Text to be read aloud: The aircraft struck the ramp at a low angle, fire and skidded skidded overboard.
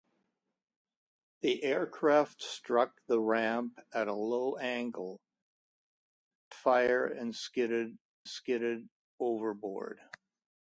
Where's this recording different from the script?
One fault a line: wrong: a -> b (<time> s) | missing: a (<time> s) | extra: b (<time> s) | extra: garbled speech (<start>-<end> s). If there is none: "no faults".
no faults